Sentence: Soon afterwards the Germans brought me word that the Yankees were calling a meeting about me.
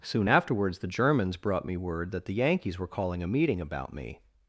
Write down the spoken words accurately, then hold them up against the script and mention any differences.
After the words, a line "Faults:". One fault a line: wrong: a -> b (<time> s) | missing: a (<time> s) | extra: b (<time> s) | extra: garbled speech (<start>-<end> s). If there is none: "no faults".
Soon afterwards the Germans brought me word that the Yankees were calling a meeting about me.
Faults:
no faults